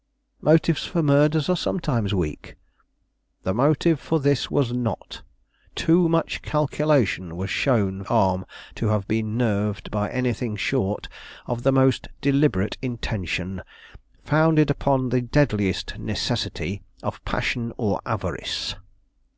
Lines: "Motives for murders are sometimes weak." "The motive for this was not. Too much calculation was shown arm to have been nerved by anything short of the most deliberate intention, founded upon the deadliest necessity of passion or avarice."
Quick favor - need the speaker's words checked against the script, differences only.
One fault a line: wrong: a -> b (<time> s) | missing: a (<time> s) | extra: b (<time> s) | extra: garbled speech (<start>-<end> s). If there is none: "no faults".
no faults